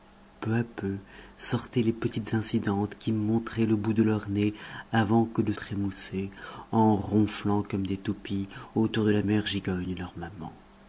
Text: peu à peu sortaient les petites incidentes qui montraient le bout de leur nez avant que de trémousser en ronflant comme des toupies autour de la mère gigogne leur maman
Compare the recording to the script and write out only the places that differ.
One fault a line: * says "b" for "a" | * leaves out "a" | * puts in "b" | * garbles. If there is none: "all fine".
all fine